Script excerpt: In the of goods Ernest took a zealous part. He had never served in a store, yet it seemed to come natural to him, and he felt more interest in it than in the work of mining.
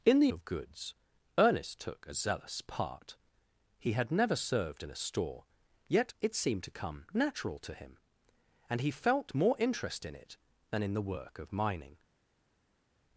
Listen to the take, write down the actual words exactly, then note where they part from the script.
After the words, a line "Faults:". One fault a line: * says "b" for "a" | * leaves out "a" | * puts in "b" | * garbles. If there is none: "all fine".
In the of goods Ernest took a zealous part. He had never served in a store, yet it seemed to come natural to him, and he felt more interest in it than in the work of mining.
Faults:
all fine